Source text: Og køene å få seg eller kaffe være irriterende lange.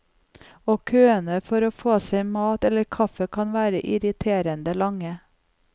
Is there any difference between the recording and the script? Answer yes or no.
yes